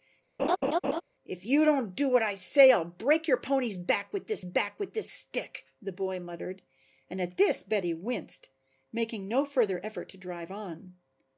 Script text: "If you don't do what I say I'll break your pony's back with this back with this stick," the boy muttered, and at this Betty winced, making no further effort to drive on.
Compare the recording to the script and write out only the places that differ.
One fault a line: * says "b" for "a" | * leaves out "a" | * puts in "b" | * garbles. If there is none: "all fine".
all fine